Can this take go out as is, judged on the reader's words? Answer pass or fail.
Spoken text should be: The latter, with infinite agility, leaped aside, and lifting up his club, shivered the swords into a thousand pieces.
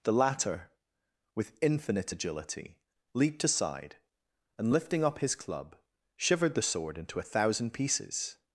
fail